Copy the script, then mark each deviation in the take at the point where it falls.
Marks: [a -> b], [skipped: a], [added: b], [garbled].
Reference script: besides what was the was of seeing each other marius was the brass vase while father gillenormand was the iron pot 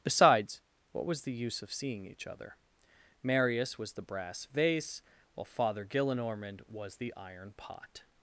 besides what was the [was -> use] of seeing each other marius was the brass vase while father gillenormand was the iron pot